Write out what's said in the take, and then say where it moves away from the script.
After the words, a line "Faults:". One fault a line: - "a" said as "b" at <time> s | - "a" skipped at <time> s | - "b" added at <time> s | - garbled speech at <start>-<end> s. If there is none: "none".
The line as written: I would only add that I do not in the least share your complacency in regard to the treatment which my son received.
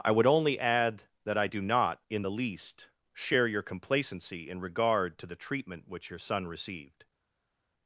I would only add that I do not in the least share your complacency in regard to the treatment which your son received.
Faults:
- "my" said as "your" at 6.1 s